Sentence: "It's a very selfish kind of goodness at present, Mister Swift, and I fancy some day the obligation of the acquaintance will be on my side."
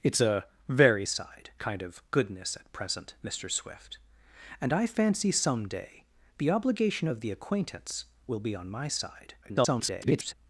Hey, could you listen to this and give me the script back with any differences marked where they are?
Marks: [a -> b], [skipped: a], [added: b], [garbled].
"It's a very [selfish -> side] kind of goodness at present, Mister Swift, and I fancy some day the obligation of the acquaintance will be on my side." [garbled]